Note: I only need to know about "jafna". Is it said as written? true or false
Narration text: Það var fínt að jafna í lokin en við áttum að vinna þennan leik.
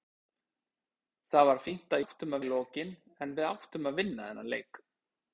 false